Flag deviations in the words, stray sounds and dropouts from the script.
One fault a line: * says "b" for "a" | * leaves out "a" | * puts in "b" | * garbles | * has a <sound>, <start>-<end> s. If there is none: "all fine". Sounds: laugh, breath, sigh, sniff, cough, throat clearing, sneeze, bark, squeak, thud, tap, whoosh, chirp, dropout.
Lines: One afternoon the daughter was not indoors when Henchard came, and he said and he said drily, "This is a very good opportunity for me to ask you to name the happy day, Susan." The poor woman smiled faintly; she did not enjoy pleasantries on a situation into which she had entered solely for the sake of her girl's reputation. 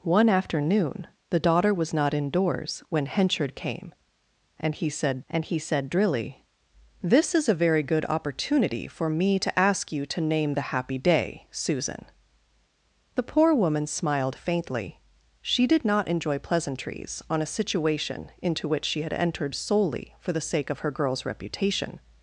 all fine